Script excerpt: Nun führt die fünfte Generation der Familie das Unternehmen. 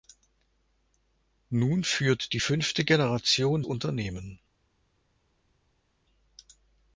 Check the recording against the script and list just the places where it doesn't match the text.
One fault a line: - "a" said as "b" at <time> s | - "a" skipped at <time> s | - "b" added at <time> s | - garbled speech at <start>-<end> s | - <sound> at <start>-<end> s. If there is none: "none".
- "der Familie das" skipped at 3.6 s